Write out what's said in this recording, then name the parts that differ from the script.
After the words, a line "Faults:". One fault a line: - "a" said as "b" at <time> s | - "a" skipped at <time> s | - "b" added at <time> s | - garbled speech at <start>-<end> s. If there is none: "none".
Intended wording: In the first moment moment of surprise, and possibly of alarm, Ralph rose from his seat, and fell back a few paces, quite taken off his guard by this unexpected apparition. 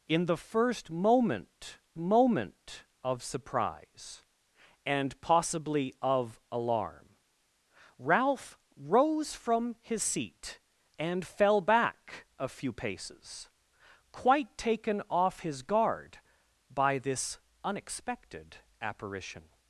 In the first moment moment of surprise, and possibly of alarm, Ralph rose from his seat, and fell back a few paces, quite taken off his guard by this unexpected apparition.
Faults:
none